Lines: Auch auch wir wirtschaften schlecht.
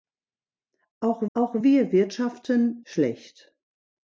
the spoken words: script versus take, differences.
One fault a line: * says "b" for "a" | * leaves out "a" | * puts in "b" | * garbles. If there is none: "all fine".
all fine